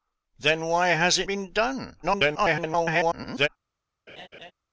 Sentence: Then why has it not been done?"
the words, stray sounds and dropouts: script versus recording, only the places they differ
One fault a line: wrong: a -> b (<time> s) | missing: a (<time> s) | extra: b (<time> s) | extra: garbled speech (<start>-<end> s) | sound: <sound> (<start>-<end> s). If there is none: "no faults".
missing: not (1.3 s)
extra: garbled speech (2.0-3.5 s)
sound: laugh (4.1-4.5 s)